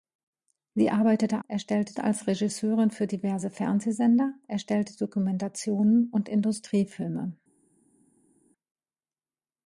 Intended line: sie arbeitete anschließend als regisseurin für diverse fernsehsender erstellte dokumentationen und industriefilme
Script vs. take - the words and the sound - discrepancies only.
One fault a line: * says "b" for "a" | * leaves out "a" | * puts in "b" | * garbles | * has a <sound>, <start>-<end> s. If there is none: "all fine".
* says "erstellte" for "anschließend"